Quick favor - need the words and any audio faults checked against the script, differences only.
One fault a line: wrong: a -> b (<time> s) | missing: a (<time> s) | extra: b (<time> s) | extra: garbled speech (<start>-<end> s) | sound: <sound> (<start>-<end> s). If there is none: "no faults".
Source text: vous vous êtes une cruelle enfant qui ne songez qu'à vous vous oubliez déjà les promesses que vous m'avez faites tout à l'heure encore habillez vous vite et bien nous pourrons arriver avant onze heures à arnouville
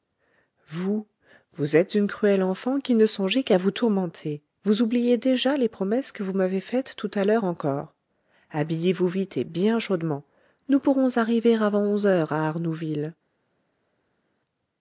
extra: tourmenter (3.7 s)
extra: chaudement (9.8 s)